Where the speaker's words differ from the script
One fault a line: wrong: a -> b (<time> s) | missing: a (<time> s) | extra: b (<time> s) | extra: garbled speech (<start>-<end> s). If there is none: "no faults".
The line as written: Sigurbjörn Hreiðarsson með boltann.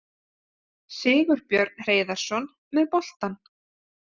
no faults